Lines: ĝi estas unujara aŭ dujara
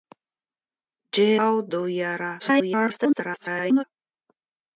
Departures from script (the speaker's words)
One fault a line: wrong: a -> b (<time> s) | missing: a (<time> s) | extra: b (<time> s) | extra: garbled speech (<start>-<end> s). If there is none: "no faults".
missing: estas unujara (1.2 s)
extra: garbled speech (2.4-3.8 s)